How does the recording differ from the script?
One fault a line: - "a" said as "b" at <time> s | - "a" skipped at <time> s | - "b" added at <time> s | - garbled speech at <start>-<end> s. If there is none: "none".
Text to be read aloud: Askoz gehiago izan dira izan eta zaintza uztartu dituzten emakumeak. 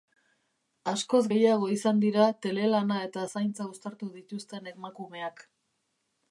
- "izan" said as "telelana" at 2.5 s